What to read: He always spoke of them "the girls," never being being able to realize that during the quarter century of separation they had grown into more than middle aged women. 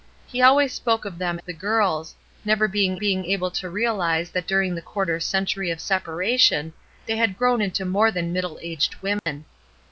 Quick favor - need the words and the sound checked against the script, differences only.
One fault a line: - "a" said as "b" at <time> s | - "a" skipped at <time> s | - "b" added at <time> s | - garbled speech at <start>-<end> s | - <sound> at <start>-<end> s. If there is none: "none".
- dropout at 9.2-9.3 s